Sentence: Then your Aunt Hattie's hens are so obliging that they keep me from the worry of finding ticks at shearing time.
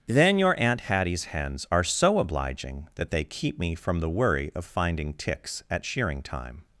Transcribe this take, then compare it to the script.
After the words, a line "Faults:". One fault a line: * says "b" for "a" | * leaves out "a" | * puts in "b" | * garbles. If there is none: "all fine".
Then your Aunt Hattie's hens are so obliging that they keep me from the worry of finding ticks at shearing time.
Faults:
all fine